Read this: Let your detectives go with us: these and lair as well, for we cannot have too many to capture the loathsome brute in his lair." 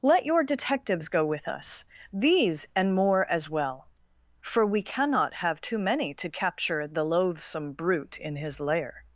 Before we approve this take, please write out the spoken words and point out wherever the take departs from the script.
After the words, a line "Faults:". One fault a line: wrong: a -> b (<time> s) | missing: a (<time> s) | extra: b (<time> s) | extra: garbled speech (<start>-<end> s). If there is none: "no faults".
Let your detectives go with us: these and more as well, for we cannot have too many to capture the loathsome brute in his lair."
Faults:
wrong: lair -> more (3.0 s)